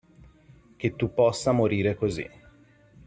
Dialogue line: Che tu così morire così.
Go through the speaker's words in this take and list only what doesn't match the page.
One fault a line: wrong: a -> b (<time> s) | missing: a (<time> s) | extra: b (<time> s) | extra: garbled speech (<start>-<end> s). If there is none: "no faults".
wrong: così -> possa (1.1 s)